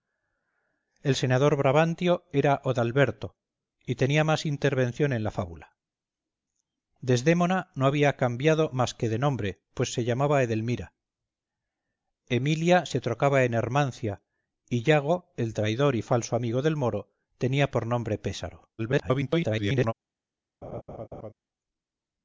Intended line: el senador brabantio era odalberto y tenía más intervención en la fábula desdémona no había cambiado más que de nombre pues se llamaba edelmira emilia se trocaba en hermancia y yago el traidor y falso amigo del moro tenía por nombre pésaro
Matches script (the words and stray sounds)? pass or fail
fail